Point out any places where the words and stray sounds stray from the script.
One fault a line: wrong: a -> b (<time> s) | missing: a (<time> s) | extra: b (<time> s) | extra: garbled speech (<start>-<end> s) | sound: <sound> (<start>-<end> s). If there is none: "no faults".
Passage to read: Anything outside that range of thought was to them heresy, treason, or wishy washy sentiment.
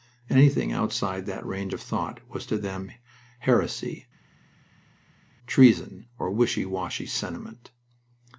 no faults